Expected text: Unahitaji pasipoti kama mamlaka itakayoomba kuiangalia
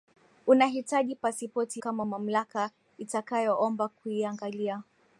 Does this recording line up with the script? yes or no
yes